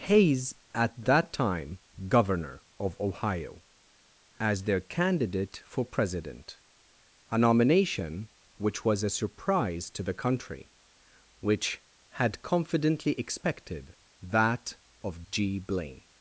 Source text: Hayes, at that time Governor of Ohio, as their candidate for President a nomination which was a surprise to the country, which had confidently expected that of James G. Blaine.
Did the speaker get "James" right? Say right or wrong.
wrong